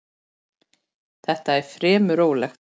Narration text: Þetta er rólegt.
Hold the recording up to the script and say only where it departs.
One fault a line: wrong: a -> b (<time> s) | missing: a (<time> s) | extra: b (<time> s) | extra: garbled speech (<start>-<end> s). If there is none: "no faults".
extra: fremur (1.7 s)